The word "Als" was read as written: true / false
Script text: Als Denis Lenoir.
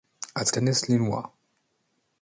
true